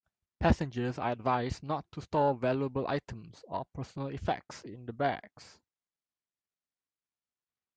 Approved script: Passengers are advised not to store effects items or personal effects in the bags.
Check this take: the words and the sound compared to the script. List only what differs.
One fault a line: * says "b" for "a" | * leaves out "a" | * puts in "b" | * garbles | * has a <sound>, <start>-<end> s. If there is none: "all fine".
* says "valuable" for "effects"